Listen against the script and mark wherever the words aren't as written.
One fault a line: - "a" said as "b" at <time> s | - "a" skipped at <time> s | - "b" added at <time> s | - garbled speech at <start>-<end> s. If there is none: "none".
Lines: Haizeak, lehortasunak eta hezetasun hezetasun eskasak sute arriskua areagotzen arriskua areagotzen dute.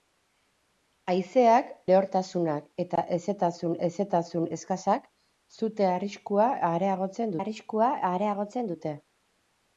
none